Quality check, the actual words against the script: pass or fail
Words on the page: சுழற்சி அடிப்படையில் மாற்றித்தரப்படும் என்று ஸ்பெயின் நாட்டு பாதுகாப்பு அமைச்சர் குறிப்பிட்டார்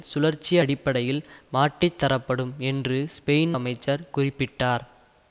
fail